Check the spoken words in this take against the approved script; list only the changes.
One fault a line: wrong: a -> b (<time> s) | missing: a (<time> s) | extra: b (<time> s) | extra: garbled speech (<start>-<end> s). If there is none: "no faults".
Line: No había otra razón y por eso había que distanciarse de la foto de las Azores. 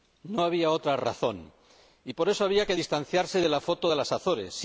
no faults